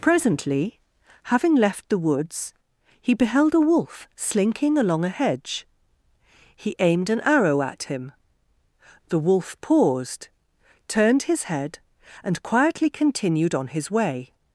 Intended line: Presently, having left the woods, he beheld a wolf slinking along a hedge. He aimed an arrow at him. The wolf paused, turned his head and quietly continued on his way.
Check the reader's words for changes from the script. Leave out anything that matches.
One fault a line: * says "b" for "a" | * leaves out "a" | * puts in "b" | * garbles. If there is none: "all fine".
all fine